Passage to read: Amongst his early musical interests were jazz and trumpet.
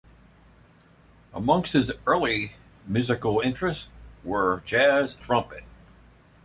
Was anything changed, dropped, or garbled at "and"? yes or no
yes